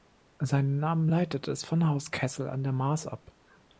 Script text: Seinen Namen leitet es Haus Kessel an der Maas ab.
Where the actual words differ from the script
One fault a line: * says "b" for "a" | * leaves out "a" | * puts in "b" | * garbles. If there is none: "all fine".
* puts in "von"